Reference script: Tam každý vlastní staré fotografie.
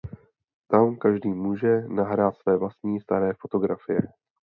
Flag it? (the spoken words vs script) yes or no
yes